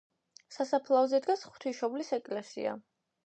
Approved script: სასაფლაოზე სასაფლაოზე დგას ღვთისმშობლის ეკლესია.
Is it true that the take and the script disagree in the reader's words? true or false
true